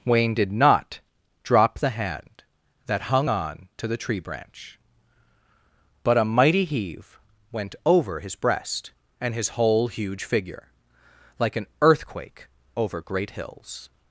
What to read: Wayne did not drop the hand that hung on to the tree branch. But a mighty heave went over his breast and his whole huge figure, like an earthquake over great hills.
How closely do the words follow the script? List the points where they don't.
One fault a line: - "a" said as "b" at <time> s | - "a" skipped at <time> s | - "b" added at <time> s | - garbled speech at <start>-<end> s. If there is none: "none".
none